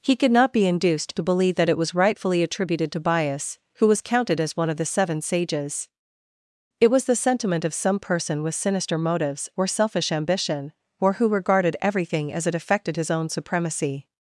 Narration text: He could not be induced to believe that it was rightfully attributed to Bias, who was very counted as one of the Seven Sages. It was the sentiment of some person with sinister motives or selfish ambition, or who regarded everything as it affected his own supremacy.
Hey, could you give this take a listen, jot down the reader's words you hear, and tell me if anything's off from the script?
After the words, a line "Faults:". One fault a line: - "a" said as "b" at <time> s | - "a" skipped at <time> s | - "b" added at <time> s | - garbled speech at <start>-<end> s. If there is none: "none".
He could not be induced to believe that it was rightfully attributed to Bias, who was counted as one of the Seven Sages. It was the sentiment of some person with sinister motives or selfish ambition, or who regarded everything as it affected his own supremacy.
Faults:
- "very" skipped at 4.0 s